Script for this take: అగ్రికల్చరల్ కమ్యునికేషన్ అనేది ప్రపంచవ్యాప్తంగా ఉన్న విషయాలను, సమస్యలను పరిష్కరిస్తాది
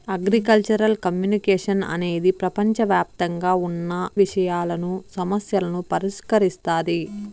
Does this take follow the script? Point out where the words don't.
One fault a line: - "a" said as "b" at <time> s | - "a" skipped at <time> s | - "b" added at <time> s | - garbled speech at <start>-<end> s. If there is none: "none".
none